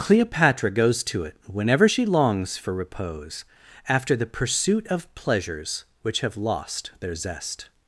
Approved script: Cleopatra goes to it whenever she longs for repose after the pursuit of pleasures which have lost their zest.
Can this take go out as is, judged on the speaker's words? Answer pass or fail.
pass